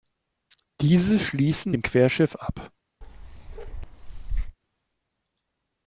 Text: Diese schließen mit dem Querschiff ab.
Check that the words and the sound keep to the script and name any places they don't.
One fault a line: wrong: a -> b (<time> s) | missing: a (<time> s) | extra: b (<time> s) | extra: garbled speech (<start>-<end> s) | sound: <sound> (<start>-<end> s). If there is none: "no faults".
missing: mit (1.8 s)
sound: bark (3.0-4.6 s)